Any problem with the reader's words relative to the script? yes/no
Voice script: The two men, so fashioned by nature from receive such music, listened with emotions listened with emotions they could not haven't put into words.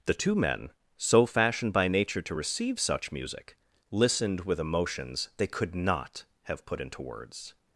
yes